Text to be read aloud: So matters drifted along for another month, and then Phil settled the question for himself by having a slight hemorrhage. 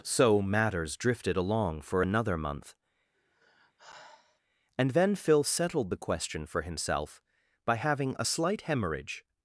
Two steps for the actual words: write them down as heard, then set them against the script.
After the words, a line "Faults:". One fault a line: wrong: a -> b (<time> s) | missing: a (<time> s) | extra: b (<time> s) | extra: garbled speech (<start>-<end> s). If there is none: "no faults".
So matters drifted along for another month, and then Phil settled the question for himself by having a slight hemorrhage.
Faults:
no faults